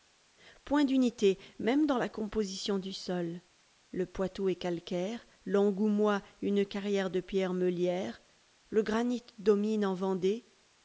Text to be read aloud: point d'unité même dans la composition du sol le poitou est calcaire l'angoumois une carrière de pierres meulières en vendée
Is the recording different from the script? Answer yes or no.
yes